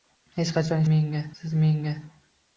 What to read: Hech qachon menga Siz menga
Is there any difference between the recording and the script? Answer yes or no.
no